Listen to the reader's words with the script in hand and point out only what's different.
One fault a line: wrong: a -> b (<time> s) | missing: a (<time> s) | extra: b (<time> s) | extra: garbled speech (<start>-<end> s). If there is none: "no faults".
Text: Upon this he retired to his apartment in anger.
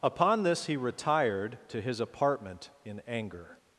no faults